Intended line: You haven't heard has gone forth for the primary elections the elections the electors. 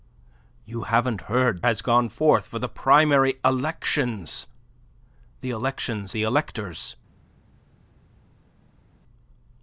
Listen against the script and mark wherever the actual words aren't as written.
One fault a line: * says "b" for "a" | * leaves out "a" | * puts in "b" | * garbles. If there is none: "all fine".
all fine